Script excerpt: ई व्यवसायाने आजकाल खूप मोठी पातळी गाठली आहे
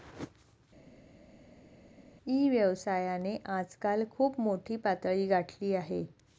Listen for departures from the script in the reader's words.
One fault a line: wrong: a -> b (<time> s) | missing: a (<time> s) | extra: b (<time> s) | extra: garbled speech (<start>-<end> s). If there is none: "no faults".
no faults